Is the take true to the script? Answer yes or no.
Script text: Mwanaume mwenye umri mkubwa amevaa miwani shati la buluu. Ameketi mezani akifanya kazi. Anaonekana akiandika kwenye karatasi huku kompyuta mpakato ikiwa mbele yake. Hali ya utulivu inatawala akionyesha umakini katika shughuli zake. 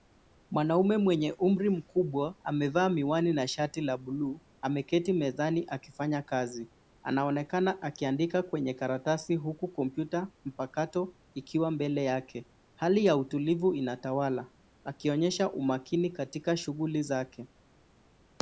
no